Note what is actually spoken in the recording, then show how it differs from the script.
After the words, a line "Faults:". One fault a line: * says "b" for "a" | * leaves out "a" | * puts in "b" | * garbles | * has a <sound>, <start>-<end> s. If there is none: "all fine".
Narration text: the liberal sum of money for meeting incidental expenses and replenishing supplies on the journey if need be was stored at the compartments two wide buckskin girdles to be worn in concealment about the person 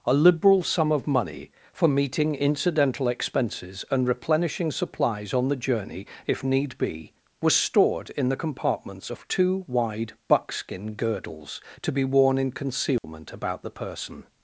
a liberal sum of money for meeting incidental expenses and replenishing supplies on the journey if need be was stored in the compartments of two wide buckskin girdles to be worn in concealment about the person
Faults:
* says "a" for "the"
* says "in" for "at"
* puts in "of"
* has a dropout, 13.0-13.0 s